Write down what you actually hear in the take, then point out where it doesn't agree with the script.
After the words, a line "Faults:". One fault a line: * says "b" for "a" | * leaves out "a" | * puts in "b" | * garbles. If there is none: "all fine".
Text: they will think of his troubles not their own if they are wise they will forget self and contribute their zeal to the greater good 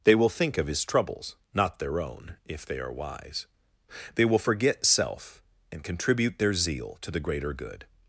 they will think of his troubles not their own if they are wise they will forget self and contribute their zeal to the greater good
Faults:
all fine